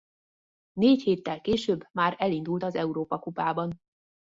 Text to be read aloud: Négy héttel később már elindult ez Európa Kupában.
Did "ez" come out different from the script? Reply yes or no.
yes